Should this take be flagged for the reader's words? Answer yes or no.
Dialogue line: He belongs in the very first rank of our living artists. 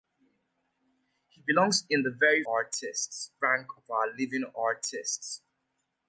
yes